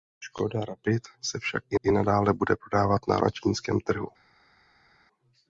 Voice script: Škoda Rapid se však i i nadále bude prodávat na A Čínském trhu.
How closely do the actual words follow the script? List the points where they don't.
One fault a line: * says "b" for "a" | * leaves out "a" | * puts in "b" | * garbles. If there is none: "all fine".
all fine